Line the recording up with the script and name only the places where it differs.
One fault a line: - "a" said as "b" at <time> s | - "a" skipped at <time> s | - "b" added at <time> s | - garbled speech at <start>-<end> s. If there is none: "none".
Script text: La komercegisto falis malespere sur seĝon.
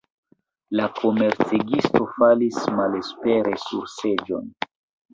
none